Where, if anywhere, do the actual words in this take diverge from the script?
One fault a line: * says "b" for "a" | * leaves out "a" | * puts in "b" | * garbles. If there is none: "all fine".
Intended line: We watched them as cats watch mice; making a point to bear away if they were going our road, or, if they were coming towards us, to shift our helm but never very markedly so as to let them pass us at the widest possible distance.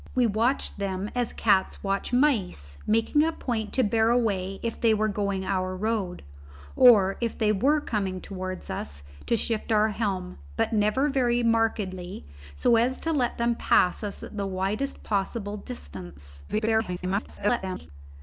* garbles